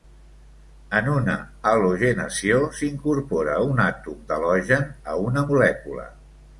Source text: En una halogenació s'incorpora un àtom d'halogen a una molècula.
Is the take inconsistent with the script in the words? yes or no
no